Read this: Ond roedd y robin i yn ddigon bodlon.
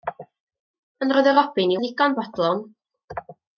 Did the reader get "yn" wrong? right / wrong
right